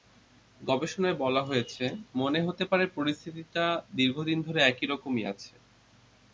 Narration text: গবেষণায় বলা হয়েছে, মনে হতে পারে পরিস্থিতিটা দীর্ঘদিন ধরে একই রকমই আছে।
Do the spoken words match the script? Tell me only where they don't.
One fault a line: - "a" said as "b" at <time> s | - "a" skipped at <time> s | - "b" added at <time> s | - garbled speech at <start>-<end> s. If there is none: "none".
none